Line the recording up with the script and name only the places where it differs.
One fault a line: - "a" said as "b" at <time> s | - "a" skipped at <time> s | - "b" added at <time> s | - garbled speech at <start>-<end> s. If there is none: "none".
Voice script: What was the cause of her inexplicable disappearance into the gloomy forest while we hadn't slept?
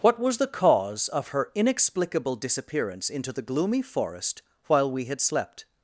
- "hadn't" said as "had" at 5.0 s